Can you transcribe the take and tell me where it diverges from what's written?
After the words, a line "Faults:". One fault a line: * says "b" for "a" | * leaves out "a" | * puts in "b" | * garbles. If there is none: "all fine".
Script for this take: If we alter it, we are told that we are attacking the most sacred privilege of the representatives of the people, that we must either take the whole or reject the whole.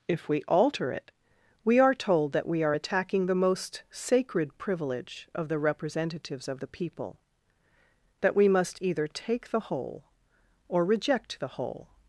If we alter it, we are told that we are attacking the most sacred privilege of the representatives of the people, that we must either take the whole or reject the whole.
Faults:
all fine